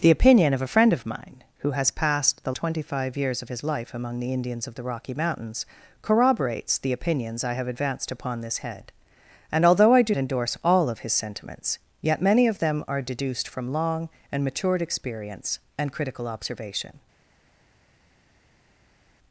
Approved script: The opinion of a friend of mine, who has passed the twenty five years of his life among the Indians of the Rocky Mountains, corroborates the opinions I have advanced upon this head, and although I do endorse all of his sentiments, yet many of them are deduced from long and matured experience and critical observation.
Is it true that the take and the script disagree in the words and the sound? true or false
false